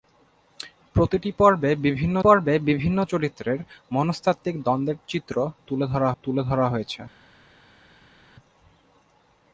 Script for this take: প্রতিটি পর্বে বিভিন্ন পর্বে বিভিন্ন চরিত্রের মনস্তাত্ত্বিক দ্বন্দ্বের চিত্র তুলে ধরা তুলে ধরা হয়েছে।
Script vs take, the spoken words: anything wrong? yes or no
no